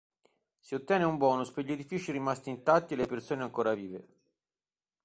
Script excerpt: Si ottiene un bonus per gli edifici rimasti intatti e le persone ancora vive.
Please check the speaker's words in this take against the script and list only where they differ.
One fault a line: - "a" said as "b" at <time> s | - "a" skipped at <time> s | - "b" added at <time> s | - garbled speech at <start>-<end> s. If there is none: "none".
none